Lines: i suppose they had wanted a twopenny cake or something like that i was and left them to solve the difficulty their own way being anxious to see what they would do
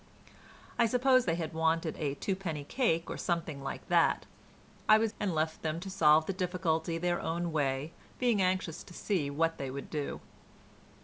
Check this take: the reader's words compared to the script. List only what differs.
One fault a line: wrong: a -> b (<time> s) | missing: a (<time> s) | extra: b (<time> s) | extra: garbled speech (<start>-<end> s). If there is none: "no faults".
no faults